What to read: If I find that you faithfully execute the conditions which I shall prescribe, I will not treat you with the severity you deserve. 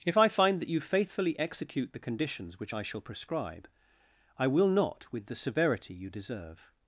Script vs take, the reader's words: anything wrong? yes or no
yes